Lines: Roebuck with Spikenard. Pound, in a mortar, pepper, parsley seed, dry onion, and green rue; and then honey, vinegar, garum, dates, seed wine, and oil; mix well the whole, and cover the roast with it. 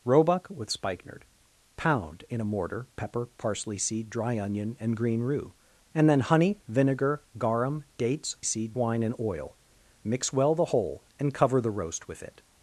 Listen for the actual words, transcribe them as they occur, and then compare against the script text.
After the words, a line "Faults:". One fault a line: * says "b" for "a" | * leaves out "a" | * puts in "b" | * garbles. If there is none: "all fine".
Roebuck with Spikenard. Pound, in a mortar, pepper, parsley seed, dry onion, and green rue; and then honey, vinegar, garum, dates, seed wine, and oil; mix well the whole, and cover the roast with it.
Faults:
all fine